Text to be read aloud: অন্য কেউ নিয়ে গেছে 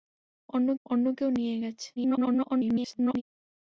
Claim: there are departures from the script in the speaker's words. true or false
true